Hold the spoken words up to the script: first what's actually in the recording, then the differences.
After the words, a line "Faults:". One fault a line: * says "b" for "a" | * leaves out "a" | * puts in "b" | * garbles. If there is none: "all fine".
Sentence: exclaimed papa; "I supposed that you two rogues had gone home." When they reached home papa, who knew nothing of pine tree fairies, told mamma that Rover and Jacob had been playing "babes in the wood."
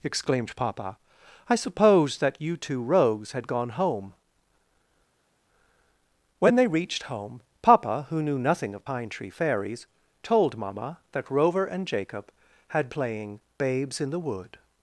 exclaimed papa; "I supposed that you two rogues had gone home." When they reached home papa, who knew nothing of pine tree fairies, told mamma that Rover and Jacob had playing "babes in the wood."
Faults:
* leaves out "been"